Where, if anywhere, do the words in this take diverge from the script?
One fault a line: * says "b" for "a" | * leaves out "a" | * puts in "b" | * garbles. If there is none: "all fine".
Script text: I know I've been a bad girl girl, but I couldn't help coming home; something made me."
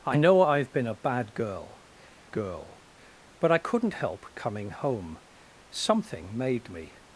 all fine